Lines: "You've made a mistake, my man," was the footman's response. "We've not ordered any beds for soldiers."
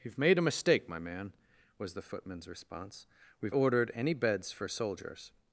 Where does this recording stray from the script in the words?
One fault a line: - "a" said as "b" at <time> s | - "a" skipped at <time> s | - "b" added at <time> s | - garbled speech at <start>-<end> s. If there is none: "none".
- "not" skipped at 3.5 s